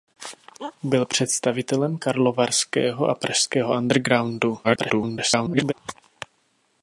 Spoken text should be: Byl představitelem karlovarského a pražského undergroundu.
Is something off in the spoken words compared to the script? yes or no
yes